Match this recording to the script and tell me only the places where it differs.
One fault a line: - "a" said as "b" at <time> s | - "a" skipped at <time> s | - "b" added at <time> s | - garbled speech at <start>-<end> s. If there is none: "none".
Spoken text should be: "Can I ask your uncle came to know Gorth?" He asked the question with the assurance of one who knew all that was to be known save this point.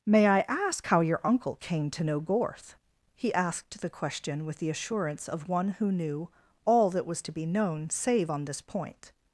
- "Can" said as "May" at 0.1 s
- "how" added at 0.9 s
- "on" added at 8.3 s